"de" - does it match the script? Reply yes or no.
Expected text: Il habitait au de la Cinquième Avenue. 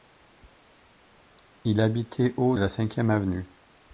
no